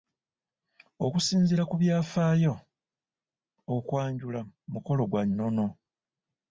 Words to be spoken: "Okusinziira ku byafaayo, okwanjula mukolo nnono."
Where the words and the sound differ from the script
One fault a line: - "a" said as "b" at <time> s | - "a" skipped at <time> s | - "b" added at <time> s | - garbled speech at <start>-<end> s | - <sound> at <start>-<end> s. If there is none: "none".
- "gwa" added at 5.1 s